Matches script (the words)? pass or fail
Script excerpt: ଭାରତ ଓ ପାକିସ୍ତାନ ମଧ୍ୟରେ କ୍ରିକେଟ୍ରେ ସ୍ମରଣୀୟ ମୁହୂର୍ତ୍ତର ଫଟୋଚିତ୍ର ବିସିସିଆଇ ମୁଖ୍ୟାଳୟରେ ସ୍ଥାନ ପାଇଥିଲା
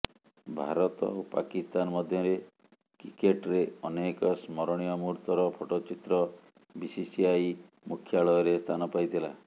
fail